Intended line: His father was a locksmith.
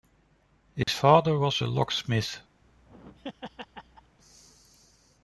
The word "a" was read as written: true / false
true